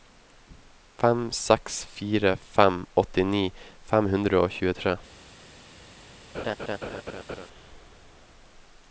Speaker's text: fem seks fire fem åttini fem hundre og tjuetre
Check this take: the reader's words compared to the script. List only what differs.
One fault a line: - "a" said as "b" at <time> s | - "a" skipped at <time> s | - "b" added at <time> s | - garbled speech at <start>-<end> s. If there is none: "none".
none